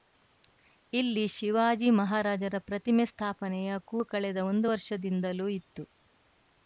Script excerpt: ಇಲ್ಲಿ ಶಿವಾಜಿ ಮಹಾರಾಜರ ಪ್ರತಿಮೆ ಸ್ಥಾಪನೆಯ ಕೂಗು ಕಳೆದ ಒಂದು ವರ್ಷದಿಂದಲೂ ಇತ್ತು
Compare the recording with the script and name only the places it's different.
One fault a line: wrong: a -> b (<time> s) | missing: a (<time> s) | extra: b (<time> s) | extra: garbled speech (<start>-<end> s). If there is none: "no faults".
no faults